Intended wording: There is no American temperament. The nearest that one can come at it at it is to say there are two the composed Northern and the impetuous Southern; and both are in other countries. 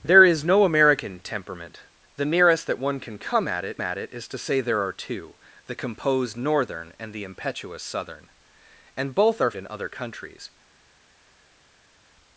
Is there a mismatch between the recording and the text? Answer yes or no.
no